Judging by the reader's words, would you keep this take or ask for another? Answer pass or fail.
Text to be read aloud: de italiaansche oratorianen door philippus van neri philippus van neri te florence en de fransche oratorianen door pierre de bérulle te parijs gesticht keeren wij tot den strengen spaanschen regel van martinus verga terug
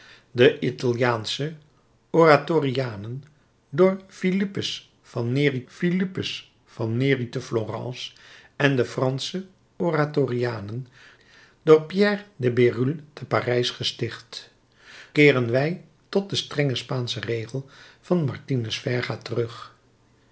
pass